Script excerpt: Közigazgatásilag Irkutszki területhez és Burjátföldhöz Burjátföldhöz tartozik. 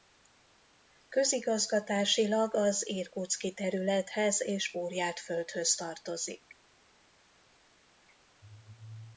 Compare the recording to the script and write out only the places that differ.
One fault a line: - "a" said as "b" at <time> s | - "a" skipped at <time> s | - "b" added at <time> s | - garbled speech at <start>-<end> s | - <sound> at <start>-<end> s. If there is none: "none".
- "az" added at 2.5 s
- "Burjátföldhöz" skipped at 5.8 s